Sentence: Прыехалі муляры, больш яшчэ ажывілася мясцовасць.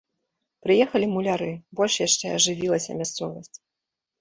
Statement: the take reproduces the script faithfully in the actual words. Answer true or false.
true